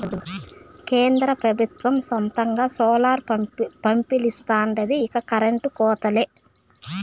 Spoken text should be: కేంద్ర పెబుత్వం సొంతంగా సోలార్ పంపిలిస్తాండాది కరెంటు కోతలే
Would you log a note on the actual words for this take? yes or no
yes